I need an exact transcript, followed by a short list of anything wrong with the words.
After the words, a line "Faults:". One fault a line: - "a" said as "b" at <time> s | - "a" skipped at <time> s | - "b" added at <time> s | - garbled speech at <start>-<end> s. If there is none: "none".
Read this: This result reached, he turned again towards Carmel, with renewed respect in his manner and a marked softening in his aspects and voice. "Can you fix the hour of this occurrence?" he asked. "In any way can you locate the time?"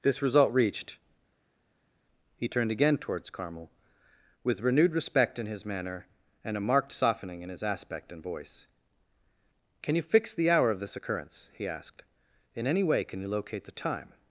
This result reached, he turned again towards Carmel, with renewed respect in his manner and a marked softening in his aspect and voice. "Can you fix the hour of this occurrence?" he asked. "In any way can you locate the time?"
Faults:
- "aspects" said as "aspect" at 7.6 s